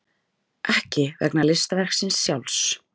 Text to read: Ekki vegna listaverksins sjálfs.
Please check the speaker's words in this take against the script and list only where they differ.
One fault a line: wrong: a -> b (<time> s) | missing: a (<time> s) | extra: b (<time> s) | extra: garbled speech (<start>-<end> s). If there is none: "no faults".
no faults